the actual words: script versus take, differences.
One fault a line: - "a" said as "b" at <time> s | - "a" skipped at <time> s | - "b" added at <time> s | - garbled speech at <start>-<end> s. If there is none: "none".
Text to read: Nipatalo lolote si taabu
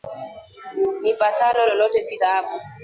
none